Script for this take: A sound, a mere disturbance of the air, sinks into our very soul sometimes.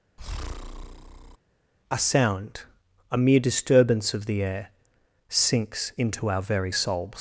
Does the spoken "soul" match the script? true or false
false